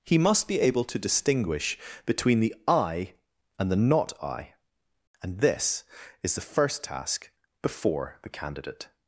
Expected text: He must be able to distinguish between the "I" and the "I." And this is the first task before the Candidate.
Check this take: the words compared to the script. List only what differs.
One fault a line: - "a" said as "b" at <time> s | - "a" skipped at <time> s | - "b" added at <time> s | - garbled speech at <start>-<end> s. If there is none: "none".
- "Not" added at 3.8 s